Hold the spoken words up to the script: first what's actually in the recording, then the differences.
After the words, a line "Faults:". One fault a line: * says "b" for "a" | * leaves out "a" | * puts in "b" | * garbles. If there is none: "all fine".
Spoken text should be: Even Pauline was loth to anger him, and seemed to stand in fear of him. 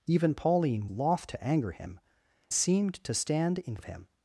Even Pauline loth to anger him, seemed to stand in of him.
Faults:
* leaves out "was"
* leaves out "and"
* leaves out "fear"